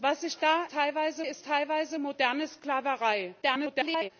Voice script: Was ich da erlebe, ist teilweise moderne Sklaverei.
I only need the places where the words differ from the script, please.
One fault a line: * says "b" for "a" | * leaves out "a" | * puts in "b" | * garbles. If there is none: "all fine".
* says "teilweise" for "erlebe"
* garbles